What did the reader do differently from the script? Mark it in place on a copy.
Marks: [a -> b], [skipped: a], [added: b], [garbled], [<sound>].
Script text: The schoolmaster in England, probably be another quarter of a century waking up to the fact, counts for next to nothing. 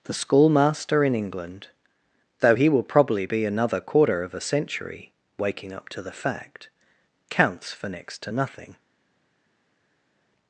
The schoolmaster in England, [added: though he will] probably be another quarter of a century waking up to the fact, counts for next to nothing.